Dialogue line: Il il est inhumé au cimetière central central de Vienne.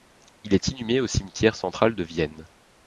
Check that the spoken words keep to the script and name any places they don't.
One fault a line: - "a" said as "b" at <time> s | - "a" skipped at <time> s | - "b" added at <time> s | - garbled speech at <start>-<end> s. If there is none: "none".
- "il" skipped at 0.6 s
- "central" skipped at 1.9 s